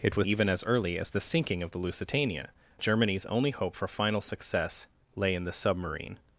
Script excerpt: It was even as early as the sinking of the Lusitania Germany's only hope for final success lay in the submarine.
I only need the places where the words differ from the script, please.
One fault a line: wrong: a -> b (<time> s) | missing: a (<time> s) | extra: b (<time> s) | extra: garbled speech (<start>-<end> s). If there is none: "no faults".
no faults